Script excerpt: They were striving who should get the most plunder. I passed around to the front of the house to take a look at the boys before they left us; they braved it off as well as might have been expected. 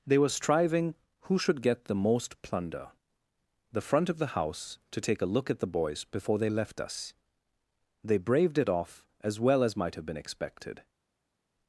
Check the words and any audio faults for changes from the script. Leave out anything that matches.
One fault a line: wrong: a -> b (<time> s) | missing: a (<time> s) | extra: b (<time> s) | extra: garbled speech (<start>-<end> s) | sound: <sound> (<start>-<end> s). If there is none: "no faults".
missing: I passed around to (2.9 s)